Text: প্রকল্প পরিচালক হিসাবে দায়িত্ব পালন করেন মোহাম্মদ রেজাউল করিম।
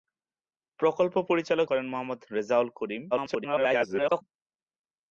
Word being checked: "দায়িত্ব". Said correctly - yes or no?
no